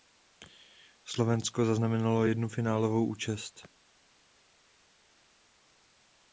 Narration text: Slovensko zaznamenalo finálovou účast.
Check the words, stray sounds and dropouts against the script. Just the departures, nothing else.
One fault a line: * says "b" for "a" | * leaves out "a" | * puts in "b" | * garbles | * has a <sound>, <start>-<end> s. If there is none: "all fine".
* puts in "jednu"